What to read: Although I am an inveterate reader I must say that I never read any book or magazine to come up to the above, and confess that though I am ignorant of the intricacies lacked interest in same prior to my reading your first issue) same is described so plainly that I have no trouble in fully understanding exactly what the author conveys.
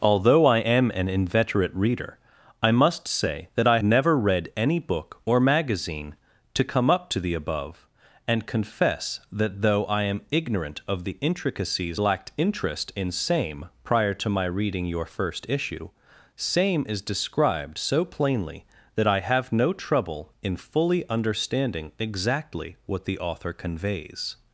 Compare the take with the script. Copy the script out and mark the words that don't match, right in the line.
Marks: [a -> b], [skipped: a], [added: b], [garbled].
Although I am an inveterate reader I must say that I never read any book or magazine to come up to the above, and confess that though I am ignorant of the intricacies lacked interest in same prior to my reading your first issue) same is described so plainly that I have no trouble in fully understanding exactly what the author conveys.